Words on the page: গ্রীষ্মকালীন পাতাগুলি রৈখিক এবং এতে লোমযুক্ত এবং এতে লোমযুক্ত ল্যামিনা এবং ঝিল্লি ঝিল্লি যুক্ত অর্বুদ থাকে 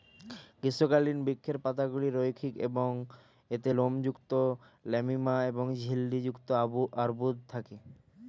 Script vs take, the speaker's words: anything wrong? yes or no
yes